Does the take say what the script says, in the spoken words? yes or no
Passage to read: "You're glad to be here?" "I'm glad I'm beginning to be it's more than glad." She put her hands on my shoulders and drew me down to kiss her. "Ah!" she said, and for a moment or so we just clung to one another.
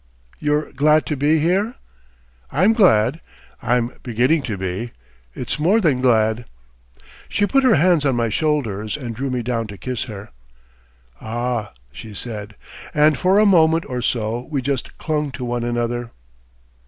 yes